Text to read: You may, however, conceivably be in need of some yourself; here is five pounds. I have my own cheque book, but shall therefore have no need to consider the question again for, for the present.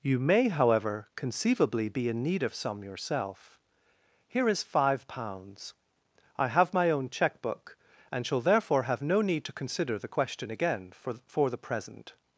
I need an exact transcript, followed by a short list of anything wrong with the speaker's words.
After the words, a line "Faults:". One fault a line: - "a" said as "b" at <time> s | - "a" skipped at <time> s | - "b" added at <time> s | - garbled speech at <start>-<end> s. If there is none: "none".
You may, however, conceivably be in need of some yourself; here is five pounds. I have my own cheque book, and shall therefore have no need to consider the question again for, for the present.
Faults:
- "but" said as "and" at 8.1 s